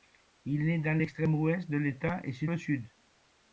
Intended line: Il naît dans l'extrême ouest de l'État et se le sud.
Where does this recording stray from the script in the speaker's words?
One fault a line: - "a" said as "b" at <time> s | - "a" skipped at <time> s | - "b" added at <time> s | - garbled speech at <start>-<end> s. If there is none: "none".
none